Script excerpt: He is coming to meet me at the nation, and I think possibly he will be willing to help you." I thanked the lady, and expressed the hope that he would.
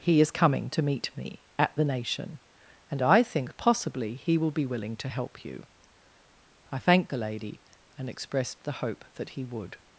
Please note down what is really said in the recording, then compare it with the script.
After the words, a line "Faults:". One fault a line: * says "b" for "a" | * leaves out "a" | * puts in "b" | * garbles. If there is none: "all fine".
He is coming to meet me at the nation, and I think possibly he will be willing to help you." I thanked the lady, and expressed the hope that he would.
Faults:
all fine